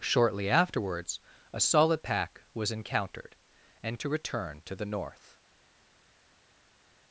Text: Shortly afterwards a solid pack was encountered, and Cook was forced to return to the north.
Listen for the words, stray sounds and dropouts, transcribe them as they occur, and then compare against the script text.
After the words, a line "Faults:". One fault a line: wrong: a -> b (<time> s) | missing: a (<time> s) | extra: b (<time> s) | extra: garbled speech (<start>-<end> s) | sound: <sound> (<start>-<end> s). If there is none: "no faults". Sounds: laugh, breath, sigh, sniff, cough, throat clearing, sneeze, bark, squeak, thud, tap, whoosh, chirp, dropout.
Shortly afterwards a solid pack was encountered, and To return to the north.
Faults:
missing: Cook was forced (4.0 s)